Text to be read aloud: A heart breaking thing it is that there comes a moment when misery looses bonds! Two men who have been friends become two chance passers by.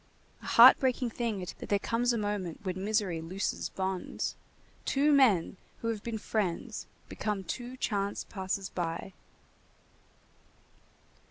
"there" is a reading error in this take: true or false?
false